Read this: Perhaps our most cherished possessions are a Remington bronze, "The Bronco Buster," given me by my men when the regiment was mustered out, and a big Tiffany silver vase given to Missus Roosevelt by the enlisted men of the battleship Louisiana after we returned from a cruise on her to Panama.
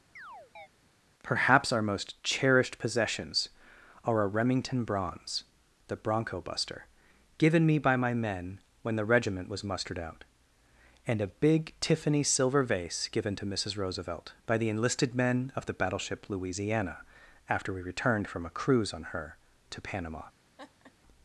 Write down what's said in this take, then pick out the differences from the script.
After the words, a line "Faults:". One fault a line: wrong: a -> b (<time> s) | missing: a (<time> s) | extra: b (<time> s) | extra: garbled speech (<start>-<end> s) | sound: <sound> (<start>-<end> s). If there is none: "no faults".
Perhaps our most cherished possessions are a Remington bronze, "The Bronco Buster," given me by my men when the regiment was mustered out, and a big Tiffany silver vase given to Missus Roosevelt by the enlisted men of the battleship Louisiana after we returned from a cruise on her to Panama.
Faults:
sound: chirp (0.2-0.7 s)
sound: laugh (20.6-20.9 s)